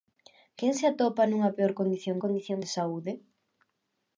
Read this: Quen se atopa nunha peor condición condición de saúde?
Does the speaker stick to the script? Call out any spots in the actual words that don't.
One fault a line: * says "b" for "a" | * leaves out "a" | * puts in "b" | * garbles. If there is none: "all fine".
all fine